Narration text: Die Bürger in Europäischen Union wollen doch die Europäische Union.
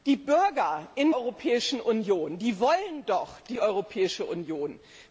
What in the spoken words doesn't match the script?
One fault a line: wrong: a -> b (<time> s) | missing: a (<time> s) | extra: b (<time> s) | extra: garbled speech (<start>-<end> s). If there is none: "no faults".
no faults